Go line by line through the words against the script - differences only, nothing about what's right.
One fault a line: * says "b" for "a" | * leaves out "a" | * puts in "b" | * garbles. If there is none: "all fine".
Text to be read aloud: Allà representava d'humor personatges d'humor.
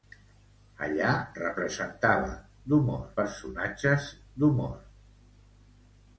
all fine